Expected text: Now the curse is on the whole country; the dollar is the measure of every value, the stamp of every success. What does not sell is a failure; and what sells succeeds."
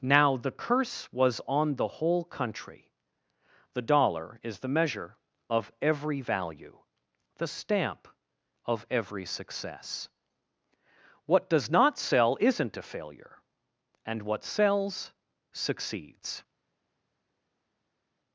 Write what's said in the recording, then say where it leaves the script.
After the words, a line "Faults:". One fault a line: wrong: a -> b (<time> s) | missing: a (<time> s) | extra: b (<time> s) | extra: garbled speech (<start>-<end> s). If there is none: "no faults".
Now the curse was on the whole country; the dollar is the measure of every value, the stamp of every success. What does not sell isn't a failure; and what sells succeeds."
Faults:
wrong: is -> was (1.1 s)
wrong: is -> isn't (12.4 s)